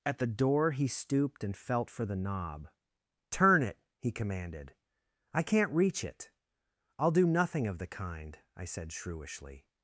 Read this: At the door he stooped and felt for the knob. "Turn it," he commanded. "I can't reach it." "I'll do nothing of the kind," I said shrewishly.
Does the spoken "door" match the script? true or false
true